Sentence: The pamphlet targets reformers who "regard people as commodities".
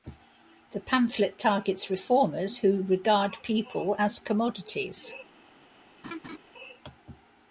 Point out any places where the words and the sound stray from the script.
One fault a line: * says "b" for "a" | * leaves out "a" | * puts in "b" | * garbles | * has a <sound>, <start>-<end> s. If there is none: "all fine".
* has a laugh, 6.0-6.4 s